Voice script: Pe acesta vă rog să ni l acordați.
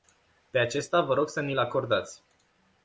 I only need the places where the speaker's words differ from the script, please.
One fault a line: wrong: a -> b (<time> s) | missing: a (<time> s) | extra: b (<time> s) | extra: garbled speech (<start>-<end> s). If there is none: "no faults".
no faults